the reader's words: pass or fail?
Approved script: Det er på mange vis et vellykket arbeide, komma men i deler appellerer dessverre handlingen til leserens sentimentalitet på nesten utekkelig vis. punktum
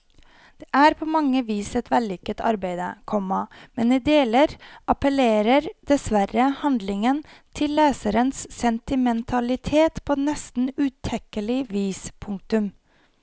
pass